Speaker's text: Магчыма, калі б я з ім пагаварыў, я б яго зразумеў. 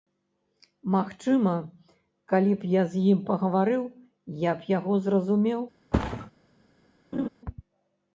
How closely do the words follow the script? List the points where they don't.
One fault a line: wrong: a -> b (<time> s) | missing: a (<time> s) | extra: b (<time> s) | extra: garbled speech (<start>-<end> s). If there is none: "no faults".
no faults